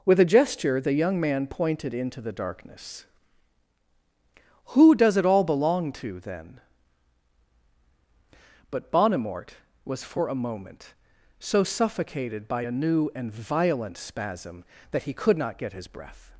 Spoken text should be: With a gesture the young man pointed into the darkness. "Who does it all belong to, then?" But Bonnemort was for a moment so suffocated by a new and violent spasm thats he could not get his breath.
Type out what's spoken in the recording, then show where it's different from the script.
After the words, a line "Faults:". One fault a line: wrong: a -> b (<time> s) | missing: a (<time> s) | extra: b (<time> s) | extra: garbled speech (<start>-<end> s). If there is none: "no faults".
With a gesture the young man pointed into the darkness. "Who does it all belong to, then?" But Bonnemort was for a moment so suffocated by a new and violent spasm that he could not get his breath.
Faults:
wrong: thats -> that (14.9 s)